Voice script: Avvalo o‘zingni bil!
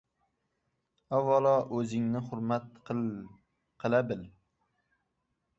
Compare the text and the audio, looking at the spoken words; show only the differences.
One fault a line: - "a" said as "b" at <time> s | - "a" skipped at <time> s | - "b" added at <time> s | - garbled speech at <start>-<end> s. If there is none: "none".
- "hurmat qila" added at 2.3 s